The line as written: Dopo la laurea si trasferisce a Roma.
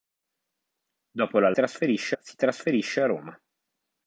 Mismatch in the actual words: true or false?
true